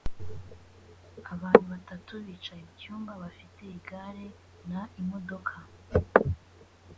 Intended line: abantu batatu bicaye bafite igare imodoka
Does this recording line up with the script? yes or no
no